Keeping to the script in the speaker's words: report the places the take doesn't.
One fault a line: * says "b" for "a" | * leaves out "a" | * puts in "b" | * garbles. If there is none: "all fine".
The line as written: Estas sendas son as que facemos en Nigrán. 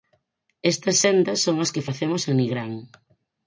all fine